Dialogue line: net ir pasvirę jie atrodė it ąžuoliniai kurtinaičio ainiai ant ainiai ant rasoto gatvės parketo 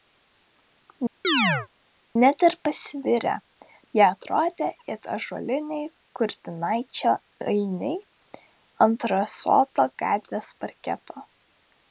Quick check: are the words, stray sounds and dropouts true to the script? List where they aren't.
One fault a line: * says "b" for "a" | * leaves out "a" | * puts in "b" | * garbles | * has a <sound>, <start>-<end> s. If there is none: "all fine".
* has a chirp, 1.2-1.7 s
* leaves out "ainiai ant"